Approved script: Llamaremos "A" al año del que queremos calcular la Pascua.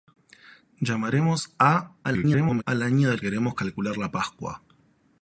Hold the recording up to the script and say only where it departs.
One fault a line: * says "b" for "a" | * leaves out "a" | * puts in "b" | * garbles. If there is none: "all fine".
* garbles
* leaves out "que"